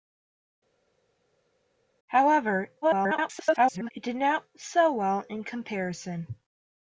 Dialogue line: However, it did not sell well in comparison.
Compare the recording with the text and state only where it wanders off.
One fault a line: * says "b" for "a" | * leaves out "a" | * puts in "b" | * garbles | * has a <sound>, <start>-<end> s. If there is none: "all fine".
* garbles